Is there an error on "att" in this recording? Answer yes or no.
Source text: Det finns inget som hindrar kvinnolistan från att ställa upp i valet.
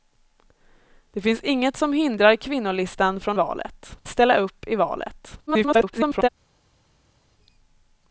yes